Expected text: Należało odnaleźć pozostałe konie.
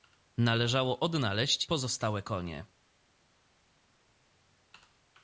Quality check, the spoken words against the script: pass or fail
pass